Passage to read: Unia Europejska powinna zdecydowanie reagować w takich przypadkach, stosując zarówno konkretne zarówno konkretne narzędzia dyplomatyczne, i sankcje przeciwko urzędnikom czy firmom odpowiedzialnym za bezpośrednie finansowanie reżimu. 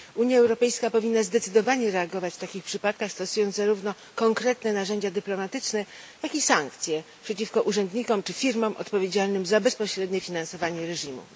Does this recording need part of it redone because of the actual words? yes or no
yes